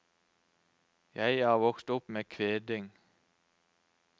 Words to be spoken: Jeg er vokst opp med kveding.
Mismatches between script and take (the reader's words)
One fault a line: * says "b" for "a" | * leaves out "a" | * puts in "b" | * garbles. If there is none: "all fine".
all fine